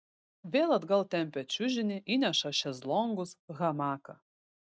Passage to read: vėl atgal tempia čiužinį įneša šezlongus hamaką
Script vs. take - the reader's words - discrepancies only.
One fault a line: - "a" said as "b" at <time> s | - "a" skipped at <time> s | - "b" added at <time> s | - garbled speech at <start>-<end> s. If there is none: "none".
none